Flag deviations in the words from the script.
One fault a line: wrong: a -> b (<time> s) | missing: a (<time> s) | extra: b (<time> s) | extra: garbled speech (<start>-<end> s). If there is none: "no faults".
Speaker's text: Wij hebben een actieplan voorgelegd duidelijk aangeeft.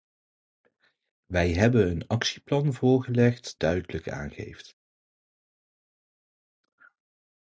no faults